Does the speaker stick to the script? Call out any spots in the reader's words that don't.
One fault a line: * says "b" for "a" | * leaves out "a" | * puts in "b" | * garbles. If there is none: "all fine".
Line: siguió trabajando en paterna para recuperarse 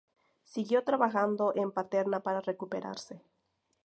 all fine